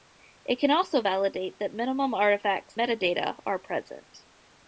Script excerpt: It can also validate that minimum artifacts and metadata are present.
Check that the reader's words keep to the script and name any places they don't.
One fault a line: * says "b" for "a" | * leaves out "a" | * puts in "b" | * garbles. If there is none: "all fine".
* leaves out "and"